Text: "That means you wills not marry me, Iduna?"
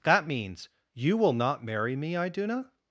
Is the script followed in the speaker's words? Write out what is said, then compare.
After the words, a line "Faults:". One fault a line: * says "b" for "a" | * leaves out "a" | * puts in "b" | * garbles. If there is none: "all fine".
"That means you will not marry me, Iduna?"
Faults:
* says "will" for "wills"